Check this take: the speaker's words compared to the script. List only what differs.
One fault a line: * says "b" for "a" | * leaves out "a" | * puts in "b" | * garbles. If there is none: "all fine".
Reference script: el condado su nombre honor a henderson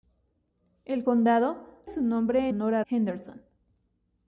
all fine